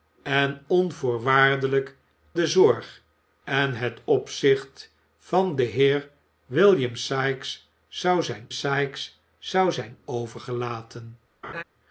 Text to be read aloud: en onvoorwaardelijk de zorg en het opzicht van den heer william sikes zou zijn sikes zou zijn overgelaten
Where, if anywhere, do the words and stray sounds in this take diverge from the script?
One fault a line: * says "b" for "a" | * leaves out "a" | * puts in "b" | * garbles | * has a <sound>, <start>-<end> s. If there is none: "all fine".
* has a laugh, 11.4-11.6 s